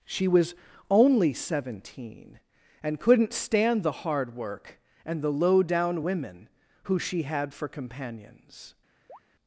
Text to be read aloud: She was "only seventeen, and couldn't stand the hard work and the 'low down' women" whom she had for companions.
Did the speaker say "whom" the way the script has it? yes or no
no